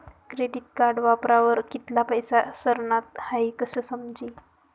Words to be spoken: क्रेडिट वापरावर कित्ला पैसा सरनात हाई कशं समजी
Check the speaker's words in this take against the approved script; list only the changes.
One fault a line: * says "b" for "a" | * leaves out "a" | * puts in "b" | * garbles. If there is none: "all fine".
* puts in "कार्ड"